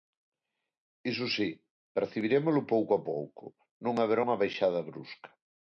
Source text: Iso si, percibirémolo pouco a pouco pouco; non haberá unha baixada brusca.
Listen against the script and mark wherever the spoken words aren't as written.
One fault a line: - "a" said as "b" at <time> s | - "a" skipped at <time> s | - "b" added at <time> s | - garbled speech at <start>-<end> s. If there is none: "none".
- "pouco" skipped at 3.4 s